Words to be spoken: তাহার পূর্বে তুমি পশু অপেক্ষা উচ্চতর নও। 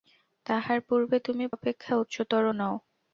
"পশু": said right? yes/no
no